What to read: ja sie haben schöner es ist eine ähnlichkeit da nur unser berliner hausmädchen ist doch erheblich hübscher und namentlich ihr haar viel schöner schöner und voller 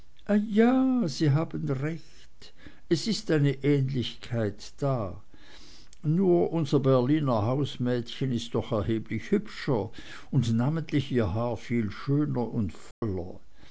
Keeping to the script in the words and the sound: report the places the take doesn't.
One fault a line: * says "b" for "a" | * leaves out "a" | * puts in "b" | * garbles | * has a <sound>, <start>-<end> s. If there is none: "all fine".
* says "recht" for "schöner"
* leaves out "schöner"
* has a dropout, 12.9-13.0 s